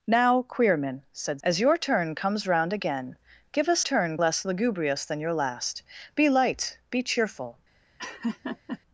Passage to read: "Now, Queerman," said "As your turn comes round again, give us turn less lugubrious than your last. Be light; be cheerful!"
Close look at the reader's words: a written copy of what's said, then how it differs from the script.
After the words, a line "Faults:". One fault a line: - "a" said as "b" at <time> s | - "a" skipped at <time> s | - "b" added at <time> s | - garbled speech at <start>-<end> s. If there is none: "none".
"Now, Queerman," said "As your turn comes round again, give us turn less lugubrious than your last. Be light; be cheerful!"
Faults:
none